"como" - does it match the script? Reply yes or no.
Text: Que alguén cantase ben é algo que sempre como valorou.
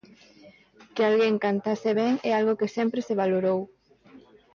no